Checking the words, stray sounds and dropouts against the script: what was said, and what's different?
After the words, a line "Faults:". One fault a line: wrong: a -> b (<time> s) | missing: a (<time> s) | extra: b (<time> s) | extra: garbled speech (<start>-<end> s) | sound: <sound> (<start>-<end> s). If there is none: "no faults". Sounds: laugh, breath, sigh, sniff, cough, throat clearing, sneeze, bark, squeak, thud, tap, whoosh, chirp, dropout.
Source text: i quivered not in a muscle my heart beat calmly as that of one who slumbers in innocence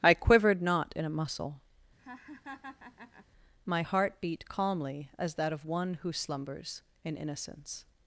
i quivered not in a muscle my heart beat calmly as that of one who slumbers in innocence
Faults:
sound: laugh (2.0-3.3 s)